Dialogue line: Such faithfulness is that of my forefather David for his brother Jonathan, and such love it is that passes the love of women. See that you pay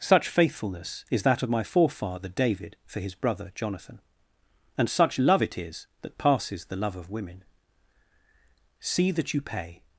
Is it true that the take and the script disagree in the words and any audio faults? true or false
false